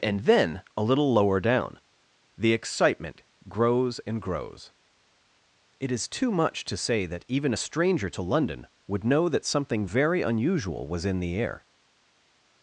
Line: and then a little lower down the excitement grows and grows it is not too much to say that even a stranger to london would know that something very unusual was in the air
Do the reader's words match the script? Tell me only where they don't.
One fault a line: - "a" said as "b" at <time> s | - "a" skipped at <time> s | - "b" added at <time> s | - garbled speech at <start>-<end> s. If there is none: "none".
- "not" skipped at 6.1 s